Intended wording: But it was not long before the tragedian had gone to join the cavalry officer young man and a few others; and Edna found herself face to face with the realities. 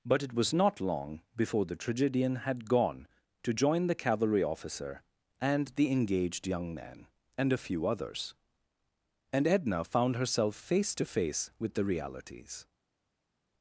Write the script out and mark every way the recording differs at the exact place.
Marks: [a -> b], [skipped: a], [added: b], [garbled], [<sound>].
But it was not long before the tragedian had gone to join the cavalry officer [added: and the engaged] young man and a few others; and Edna found herself face to face with the realities.